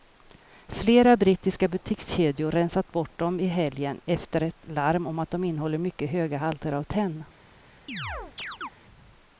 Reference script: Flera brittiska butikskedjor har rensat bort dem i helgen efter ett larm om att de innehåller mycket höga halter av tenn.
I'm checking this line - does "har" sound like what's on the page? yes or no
no